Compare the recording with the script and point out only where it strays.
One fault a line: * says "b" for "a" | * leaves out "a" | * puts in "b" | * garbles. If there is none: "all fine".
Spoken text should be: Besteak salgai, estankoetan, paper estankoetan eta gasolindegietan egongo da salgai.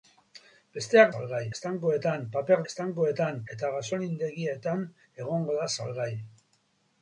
all fine